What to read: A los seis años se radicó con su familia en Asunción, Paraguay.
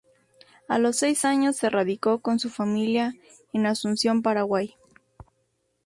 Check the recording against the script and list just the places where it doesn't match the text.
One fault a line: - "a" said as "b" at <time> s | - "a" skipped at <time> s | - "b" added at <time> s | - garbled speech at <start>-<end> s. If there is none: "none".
none